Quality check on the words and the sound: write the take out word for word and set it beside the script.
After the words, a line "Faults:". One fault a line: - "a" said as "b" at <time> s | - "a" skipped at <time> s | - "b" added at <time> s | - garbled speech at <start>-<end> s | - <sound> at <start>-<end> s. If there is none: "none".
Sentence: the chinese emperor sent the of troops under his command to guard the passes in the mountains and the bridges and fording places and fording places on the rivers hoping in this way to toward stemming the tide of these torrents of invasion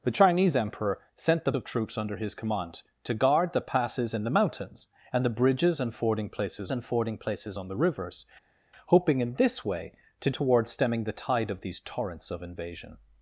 the chinese emperor sent the of troops under his command to guard the passes in the mountains and the bridges and fording places and fording places on the rivers hoping in this way to toward stemming the tide of these torrents of invasion
Faults:
none